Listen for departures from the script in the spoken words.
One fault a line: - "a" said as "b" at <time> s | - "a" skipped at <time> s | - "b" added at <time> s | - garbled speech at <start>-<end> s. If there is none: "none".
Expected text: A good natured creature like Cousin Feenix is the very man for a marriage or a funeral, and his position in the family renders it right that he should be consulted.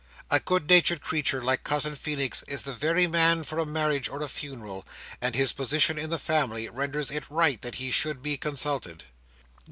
none